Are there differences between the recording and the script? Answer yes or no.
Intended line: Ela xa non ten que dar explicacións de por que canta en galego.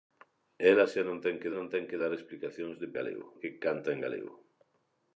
yes